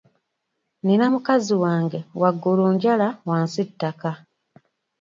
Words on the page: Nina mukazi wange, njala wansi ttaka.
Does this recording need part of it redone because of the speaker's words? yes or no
yes